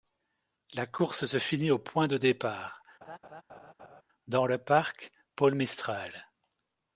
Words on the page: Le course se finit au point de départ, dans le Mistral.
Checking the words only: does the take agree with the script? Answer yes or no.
no